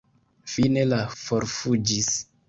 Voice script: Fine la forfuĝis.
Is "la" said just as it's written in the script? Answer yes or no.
yes